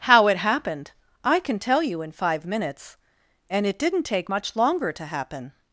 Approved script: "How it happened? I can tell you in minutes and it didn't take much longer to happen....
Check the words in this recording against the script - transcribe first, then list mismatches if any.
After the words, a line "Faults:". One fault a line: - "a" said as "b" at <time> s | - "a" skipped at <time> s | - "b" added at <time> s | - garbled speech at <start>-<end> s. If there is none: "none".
"How it happened? I can tell you in five minutes and it didn't take much longer to happen....
Faults:
- "five" added at 2.1 s